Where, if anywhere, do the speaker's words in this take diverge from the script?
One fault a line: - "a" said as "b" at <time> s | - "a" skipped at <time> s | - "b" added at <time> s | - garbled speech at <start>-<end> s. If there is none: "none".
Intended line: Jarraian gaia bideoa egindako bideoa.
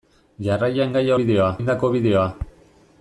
none